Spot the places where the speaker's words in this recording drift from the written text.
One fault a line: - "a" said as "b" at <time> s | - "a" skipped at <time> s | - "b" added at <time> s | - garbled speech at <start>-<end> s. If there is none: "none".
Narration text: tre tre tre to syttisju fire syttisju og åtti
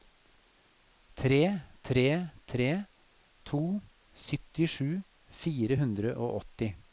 - "syttisju" said as "hundre" at 5.8 s